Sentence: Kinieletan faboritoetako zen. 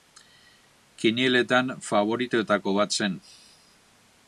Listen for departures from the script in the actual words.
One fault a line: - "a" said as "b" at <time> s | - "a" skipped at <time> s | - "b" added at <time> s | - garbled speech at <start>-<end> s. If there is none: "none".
- "bat" added at 2.8 s